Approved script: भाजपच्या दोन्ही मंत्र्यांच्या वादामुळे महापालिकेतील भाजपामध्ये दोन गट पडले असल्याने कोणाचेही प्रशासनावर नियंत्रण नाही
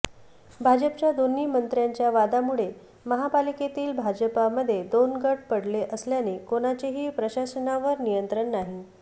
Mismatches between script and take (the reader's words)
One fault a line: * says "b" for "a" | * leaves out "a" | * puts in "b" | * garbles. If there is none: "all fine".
all fine